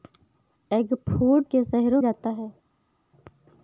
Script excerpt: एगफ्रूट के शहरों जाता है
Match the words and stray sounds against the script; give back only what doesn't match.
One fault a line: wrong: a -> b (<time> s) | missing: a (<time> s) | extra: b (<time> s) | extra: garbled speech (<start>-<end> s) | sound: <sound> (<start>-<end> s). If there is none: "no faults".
no faults